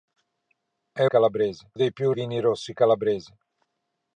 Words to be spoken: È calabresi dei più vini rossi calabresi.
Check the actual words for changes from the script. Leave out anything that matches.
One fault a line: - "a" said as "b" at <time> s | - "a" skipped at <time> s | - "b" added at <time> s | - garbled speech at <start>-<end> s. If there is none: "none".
none